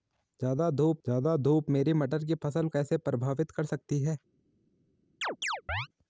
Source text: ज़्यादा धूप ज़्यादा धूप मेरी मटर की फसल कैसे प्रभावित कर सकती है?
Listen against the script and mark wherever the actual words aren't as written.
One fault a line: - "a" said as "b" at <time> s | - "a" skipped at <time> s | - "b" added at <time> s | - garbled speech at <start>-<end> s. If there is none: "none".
none